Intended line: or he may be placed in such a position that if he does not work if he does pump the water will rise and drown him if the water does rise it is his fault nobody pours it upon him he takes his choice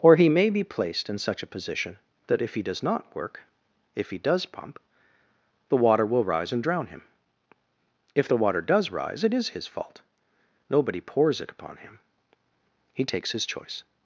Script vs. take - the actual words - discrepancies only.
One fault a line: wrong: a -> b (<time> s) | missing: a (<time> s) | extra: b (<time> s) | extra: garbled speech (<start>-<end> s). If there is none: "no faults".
no faults